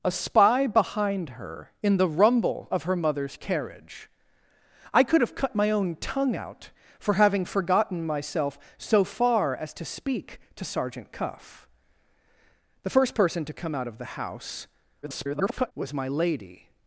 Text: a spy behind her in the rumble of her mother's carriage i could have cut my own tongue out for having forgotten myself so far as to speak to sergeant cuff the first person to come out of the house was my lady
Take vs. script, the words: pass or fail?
fail